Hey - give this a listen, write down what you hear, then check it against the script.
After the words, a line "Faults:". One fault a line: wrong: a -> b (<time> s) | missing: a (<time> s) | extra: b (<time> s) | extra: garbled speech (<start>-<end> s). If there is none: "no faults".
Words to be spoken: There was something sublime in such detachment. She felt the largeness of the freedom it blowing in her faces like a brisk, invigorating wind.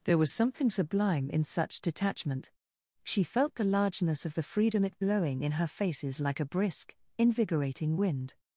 There was something sublime in such detachment. She felt the largeness of the freedom it blowing in her faces like a brisk, invigorating wind.
Faults:
no faults